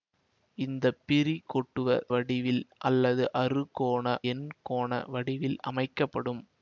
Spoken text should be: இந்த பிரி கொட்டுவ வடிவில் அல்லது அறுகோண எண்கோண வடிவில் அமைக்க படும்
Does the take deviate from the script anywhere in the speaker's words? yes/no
no